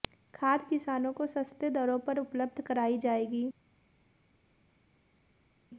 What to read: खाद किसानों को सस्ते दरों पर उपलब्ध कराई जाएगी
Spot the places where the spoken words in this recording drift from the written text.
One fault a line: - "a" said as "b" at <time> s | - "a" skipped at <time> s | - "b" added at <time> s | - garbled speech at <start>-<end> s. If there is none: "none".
none